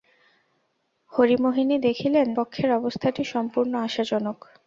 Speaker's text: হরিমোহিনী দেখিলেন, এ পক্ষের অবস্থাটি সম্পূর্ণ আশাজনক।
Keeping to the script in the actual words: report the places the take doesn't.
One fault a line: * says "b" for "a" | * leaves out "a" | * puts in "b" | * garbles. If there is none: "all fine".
* leaves out "এ"